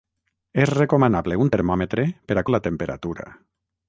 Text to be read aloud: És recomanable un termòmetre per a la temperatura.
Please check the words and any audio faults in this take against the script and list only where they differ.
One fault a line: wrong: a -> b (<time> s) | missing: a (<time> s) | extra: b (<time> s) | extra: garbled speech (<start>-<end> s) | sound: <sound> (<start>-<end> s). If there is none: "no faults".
no faults